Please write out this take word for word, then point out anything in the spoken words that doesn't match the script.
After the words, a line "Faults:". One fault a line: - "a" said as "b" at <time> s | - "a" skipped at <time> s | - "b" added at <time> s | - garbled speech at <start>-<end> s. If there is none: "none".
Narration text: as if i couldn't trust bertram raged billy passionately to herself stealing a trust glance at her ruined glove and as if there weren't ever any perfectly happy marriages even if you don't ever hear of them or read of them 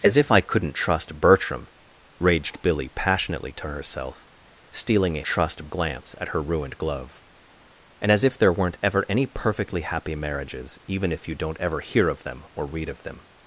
as if i couldn't trust bertram raged billy passionately to herself stealing a trust glance at her ruined glove and as if there weren't ever any perfectly happy marriages even if you don't ever hear of them or read of them
Faults:
none